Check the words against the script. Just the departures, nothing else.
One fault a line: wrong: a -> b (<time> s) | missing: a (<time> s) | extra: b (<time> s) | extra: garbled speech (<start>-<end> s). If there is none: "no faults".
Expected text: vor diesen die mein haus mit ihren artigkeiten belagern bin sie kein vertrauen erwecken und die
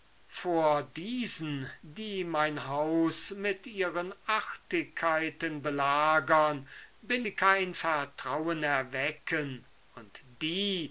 no faults